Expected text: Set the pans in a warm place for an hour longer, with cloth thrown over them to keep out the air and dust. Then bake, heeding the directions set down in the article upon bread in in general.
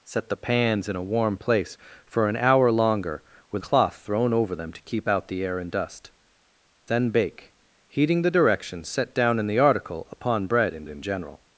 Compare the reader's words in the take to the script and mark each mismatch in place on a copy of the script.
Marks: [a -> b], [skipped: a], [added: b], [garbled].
Set the pans in a warm place for an hour longer, with cloth thrown over them to keep out the air and dust. Then bake, heeding the directions set down in the article upon bread in in general.